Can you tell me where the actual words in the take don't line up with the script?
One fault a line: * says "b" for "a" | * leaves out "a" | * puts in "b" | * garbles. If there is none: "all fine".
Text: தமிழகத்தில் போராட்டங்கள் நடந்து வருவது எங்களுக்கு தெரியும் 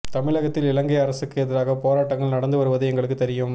* puts in "இலங்கை அரசுக்கு எதிராக"